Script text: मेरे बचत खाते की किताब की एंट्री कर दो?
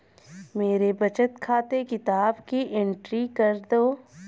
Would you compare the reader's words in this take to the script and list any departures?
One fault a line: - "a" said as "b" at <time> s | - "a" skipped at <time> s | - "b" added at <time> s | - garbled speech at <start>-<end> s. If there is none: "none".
- "की" skipped at 1.8 s